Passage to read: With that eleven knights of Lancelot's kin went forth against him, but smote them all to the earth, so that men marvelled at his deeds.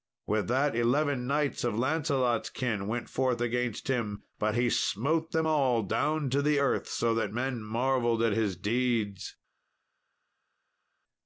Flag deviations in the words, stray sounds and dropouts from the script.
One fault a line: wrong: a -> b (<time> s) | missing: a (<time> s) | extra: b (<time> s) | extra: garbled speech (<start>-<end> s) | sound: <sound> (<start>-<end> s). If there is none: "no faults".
extra: he (4.5 s)
extra: down (5.8 s)